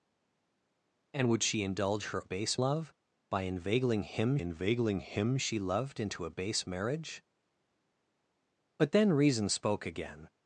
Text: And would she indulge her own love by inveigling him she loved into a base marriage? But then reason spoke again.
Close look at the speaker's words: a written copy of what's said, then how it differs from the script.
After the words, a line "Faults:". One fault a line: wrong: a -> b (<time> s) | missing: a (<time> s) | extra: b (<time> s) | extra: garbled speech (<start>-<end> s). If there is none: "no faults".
And would she indulge her base love by inveigling him inveigling him she loved into a base marriage? But then reason spoke again.
Faults:
wrong: own -> base (2.2 s)
extra: inveigling him (4.4 s)